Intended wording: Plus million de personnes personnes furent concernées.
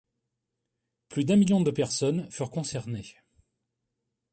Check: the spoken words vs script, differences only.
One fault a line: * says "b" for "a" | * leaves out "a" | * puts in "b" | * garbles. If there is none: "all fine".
* puts in "d'un"
* leaves out "personnes"